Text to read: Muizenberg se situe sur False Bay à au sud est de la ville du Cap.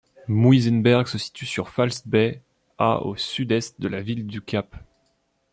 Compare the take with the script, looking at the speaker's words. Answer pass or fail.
pass